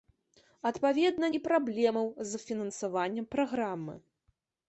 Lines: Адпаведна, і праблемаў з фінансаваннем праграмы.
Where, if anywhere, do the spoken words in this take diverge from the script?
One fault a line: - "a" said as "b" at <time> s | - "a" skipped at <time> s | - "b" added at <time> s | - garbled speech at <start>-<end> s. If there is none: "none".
none